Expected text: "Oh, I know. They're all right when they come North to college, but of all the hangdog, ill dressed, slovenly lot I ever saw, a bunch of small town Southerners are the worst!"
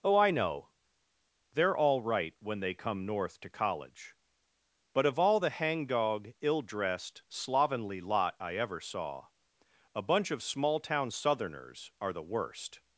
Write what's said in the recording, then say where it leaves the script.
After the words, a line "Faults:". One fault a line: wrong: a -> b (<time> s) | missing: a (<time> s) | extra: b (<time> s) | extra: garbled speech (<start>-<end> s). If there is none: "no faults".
"Oh, I know. They're all right when they come North to college, but of all the hangdog, ill dressed, slovenly lot I ever saw, a bunch of small town Southerners are the worst!"
Faults:
no faults